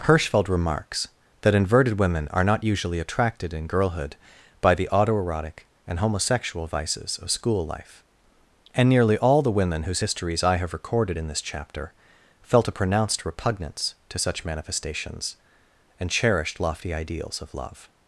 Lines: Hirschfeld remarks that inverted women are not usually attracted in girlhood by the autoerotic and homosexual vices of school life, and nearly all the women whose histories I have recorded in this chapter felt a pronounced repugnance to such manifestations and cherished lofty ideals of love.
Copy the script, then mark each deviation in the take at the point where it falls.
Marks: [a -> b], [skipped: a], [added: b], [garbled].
Hirschfeld remarks that inverted women are not usually attracted in girlhood by the autoerotic and homosexual vices of school life, and nearly all the women whose histories I have recorded in this chapter felt a pronounced repugnance to such manifestations and cherished lofty ideals of love.